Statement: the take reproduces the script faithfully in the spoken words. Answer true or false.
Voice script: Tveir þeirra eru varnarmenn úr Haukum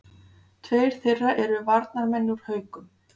true